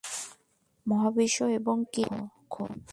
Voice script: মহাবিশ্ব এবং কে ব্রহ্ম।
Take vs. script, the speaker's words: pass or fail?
pass